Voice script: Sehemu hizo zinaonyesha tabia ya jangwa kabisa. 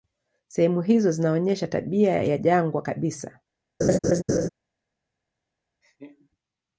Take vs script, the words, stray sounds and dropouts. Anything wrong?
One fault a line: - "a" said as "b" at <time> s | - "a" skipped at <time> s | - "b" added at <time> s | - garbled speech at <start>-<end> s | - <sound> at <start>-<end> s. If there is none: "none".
- laugh at 3.8-4.5 s
- laugh at 5.8-6.3 s